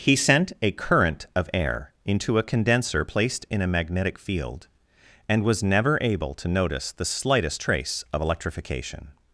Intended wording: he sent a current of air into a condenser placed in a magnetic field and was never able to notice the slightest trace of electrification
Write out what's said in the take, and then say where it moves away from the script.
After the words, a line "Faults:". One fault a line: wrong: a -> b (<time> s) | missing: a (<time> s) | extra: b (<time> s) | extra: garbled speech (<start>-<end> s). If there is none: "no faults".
he sent a current of air into a condenser placed in a magnetic field and was never able to notice the slightest trace of electrification
Faults:
no faults